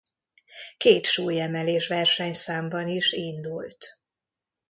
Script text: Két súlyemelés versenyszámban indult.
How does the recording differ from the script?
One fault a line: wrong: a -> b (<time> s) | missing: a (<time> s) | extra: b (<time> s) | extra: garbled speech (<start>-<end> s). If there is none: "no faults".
extra: is (2.9 s)